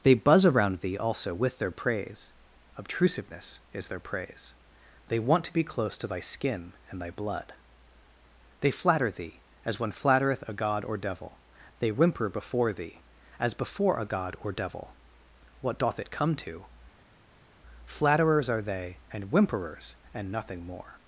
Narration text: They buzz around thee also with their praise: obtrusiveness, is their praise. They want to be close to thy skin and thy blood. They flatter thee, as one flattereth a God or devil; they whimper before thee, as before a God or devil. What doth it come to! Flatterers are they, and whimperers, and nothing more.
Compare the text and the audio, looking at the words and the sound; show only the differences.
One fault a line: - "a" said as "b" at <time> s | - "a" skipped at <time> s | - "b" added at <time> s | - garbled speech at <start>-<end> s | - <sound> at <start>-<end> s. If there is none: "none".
none